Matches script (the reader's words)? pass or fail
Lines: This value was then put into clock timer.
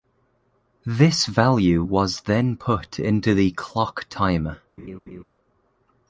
fail